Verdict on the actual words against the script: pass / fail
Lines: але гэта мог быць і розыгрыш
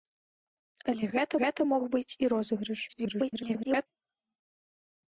fail